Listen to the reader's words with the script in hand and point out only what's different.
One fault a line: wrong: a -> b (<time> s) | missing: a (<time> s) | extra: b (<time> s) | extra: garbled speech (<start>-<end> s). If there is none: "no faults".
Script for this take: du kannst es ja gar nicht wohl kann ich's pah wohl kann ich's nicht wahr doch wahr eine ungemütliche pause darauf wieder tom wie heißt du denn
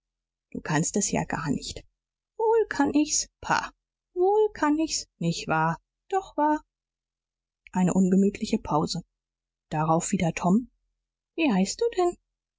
no faults